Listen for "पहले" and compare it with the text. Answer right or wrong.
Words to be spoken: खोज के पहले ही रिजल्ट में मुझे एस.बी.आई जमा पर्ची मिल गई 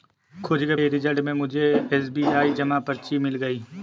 wrong